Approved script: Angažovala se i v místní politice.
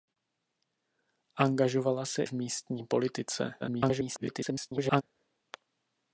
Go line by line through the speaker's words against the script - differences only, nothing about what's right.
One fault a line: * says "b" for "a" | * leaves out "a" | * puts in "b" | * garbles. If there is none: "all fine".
* leaves out "i"
* garbles